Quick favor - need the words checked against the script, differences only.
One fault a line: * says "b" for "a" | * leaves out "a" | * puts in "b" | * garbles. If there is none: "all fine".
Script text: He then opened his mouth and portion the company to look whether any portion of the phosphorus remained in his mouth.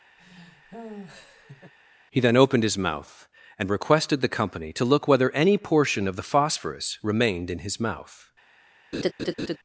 * says "requested" for "portion"